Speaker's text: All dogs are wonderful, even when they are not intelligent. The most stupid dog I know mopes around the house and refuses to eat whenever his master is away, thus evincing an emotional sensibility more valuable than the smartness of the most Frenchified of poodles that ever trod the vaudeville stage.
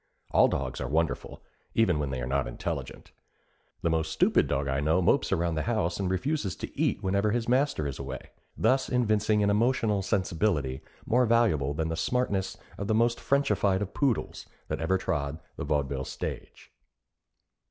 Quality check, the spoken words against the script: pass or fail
pass